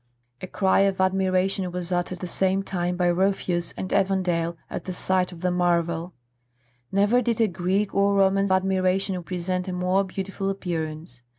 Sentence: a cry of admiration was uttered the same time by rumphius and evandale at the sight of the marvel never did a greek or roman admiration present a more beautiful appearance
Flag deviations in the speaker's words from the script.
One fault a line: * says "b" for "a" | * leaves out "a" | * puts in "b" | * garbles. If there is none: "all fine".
all fine